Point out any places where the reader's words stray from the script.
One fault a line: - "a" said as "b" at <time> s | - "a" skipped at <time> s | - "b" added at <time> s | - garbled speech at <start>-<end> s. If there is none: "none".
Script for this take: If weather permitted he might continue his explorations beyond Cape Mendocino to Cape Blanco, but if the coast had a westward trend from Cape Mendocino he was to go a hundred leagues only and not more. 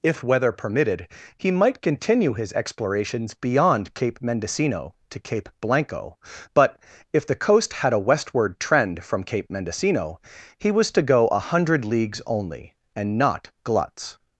- "more" said as "gluts" at 13.6 s